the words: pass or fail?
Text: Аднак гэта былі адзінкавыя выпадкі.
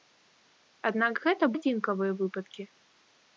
fail